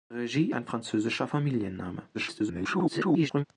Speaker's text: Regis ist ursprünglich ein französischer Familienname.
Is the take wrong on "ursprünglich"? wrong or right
wrong